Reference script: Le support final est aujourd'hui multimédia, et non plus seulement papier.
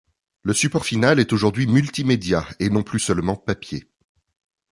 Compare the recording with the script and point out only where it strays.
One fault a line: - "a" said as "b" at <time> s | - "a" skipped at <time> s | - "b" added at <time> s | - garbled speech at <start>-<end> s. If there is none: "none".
none